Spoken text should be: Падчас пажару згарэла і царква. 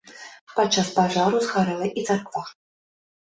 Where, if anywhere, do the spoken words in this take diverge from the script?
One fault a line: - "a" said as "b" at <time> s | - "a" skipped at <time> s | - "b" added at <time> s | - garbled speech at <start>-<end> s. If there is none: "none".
none